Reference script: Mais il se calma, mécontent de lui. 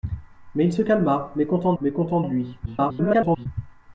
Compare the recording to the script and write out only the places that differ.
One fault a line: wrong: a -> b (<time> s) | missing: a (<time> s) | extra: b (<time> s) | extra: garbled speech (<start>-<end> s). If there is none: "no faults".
extra: mécontent (1.8 s)
extra: garbled speech (2.7-3.5 s)